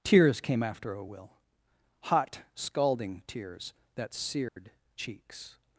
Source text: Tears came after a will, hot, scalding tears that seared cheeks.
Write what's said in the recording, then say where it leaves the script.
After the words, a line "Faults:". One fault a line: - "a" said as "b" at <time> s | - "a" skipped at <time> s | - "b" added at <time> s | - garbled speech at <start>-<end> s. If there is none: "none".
Tears came after a will, hot, scalding tears that seared cheeks.
Faults:
none